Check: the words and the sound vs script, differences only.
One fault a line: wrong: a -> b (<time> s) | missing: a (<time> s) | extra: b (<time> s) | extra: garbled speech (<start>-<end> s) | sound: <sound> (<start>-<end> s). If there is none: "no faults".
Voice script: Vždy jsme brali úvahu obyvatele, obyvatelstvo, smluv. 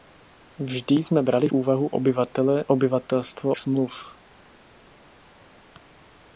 no faults